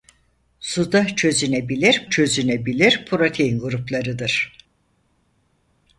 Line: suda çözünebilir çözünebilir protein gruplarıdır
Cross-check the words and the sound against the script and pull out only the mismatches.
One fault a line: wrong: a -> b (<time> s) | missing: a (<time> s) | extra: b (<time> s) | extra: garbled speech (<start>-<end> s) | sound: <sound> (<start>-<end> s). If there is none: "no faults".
no faults